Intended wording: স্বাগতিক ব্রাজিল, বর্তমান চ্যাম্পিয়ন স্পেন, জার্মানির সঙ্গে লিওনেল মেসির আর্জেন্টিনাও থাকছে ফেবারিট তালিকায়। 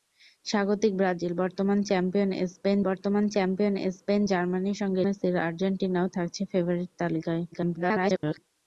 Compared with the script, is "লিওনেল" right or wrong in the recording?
wrong